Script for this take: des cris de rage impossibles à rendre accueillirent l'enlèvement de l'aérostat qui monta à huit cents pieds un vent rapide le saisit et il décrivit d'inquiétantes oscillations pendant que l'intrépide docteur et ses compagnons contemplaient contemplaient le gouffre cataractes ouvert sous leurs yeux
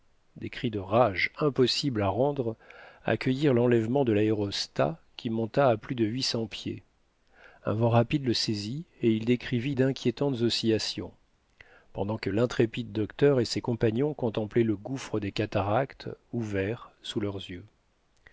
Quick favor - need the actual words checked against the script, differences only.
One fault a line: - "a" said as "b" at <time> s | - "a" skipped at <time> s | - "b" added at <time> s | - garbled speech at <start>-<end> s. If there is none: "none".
- "plus de" added at 5.8 s
- "contemplaient" skipped at 14.6 s
- "des" added at 15.2 s